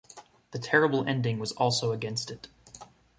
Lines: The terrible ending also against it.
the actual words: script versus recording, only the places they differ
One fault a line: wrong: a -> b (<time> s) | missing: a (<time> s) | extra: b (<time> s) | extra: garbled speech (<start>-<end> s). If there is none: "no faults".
extra: was (1.4 s)